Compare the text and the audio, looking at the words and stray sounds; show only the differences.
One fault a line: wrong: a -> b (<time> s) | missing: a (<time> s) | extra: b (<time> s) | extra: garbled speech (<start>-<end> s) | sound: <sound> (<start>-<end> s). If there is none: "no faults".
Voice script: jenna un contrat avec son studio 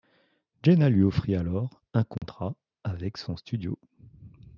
extra: lui offrit alors (0.9 s)
sound: dropout (2.2-2.2 s)